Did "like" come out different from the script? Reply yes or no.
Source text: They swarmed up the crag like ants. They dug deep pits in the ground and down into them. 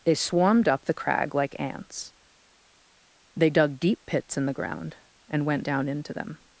no